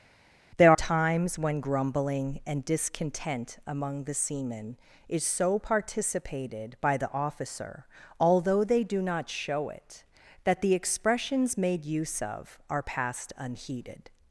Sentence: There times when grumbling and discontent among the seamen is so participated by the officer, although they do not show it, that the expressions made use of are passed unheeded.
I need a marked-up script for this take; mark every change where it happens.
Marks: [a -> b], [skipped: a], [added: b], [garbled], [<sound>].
There times when grumbling and discontent among the seamen is so participated by the officer, although they do not show it, that the expressions made use of are passed unheeded.